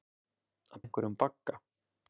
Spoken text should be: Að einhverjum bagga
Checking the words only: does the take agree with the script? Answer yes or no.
yes